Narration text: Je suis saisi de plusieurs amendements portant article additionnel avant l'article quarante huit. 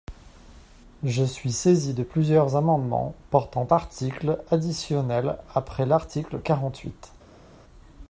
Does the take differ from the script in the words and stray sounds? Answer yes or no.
yes